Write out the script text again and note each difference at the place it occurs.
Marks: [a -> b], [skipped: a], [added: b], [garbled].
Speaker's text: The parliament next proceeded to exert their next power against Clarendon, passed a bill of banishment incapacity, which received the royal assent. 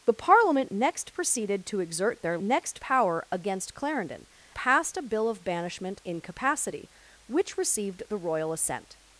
The parliament next proceeded to exert their next power against Clarendon, passed a bill of banishment incapacity, which received the royal assent.